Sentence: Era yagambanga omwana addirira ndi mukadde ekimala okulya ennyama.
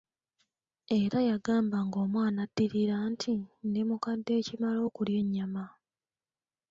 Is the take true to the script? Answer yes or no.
no